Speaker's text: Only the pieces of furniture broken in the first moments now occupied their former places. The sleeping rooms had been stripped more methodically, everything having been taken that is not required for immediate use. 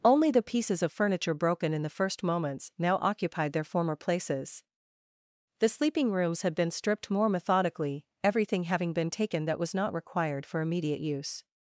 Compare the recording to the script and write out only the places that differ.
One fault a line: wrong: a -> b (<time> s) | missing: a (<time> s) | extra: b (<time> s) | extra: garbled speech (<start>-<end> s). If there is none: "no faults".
wrong: is -> was (9.6 s)